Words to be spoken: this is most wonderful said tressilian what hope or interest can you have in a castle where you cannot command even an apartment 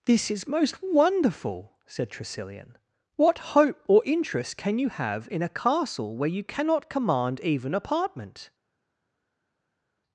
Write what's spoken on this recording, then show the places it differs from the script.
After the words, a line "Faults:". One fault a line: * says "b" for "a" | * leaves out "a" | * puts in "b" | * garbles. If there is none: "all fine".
this is most wonderful said tressilian what hope or interest can you have in a castle where you cannot command even apartment
Faults:
* leaves out "an"